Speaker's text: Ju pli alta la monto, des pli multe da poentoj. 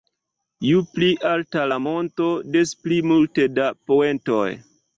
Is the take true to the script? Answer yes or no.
yes